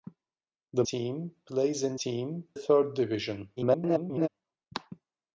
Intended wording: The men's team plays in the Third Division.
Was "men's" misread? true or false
true